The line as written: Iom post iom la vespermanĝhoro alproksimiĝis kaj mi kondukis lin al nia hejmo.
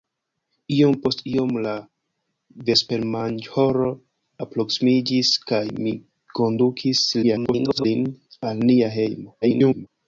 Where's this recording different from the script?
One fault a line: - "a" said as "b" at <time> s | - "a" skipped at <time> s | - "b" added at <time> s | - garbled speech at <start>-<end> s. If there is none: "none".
- garbled speech at 7.2-7.9 s
- garbled speech at 9.4-9.9 s